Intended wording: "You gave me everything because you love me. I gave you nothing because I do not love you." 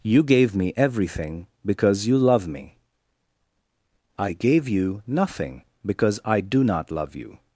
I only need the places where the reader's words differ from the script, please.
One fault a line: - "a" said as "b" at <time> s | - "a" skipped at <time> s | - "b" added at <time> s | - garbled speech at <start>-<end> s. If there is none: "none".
none